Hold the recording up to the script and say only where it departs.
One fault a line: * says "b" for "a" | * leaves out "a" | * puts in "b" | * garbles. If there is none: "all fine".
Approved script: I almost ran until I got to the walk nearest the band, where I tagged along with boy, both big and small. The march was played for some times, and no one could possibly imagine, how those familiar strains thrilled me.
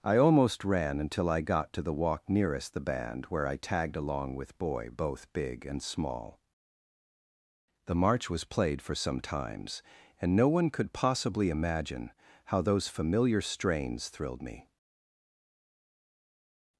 all fine